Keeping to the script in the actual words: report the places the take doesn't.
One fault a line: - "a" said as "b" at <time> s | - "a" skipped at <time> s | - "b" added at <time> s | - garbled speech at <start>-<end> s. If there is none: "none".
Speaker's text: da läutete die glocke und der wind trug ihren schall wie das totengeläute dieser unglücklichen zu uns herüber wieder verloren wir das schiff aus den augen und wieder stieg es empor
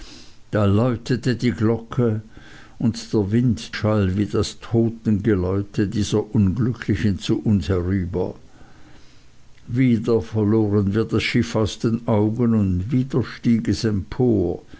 - "trug ihren" skipped at 3.8 s